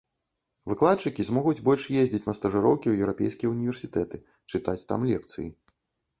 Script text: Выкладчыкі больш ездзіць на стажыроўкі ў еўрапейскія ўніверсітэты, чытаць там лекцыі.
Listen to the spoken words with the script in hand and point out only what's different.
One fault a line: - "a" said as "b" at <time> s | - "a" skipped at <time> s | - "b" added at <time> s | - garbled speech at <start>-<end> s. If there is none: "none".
- "змогуць" added at 1.3 s